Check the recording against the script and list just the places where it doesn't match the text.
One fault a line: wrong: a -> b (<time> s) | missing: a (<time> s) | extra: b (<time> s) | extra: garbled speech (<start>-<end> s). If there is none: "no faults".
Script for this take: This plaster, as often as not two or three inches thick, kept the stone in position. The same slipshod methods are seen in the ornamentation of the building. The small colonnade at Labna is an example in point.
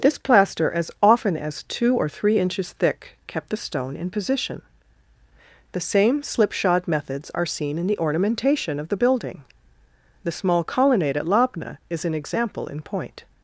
missing: not (1.6 s)